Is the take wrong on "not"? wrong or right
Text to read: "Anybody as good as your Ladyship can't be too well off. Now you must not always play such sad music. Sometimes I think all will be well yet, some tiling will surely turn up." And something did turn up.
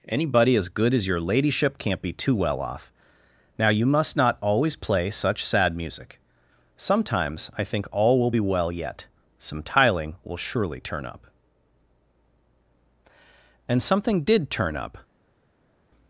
right